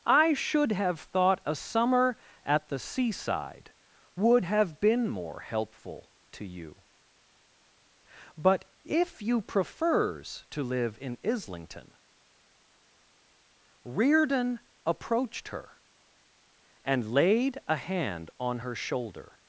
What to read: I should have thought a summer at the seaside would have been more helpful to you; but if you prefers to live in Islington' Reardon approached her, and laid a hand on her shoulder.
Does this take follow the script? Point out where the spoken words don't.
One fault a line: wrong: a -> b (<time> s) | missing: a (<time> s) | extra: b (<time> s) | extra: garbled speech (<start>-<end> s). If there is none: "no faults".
no faults